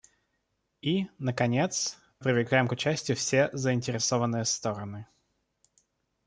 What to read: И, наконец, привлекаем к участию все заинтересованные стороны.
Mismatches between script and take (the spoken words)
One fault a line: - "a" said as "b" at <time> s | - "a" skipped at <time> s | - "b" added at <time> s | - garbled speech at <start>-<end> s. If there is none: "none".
none